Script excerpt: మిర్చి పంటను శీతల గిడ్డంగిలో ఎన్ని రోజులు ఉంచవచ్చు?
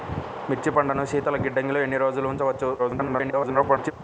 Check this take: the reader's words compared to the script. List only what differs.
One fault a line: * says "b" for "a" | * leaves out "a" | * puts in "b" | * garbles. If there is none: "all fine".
* garbles